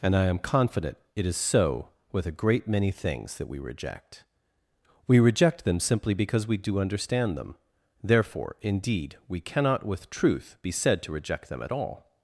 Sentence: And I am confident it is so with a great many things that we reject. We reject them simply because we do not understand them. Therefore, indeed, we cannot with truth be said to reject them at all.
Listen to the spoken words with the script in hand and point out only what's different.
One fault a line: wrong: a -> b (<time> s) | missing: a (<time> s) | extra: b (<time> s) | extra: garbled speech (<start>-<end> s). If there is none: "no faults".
missing: not (6.8 s)